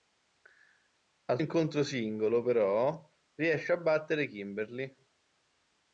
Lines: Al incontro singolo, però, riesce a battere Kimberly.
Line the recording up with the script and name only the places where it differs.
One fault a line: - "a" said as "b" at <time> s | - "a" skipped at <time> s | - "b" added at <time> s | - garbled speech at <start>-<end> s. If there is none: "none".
none